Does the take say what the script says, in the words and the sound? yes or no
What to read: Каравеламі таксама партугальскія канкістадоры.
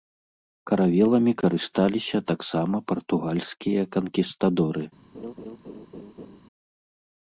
no